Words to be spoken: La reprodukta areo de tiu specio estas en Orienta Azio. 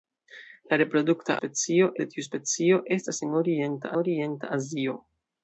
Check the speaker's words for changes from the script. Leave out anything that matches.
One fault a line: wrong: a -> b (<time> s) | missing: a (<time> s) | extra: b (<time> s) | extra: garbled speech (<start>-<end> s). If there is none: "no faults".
wrong: areo -> specio (1.4 s)
extra: Orienta (4.0 s)